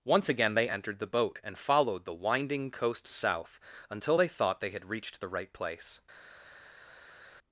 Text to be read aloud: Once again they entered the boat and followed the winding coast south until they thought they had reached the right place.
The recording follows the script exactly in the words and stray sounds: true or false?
true